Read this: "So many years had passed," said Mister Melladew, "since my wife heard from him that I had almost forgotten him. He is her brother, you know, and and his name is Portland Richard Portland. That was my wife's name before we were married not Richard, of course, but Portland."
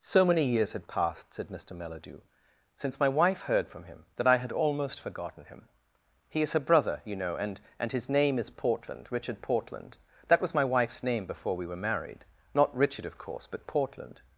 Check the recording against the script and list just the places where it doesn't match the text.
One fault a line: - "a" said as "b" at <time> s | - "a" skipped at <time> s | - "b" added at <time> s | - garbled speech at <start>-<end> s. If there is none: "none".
none